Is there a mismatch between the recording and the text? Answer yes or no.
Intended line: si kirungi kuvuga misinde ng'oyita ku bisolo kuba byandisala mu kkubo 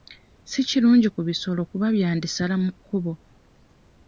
yes